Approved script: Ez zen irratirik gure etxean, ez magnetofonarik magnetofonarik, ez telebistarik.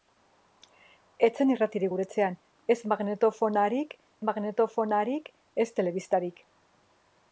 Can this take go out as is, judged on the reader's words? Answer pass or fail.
pass